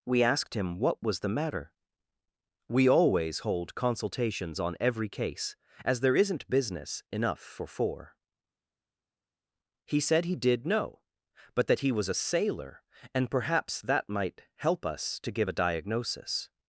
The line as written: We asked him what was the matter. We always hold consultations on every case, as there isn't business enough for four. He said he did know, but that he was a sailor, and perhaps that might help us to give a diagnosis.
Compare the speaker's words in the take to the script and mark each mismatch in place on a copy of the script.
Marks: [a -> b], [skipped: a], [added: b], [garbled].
We asked him what was the matter. We always hold consultations on every case, as there isn't business enough for four. He said he did know, but that he was a sailor, and perhaps that might help us to give a diagnosis.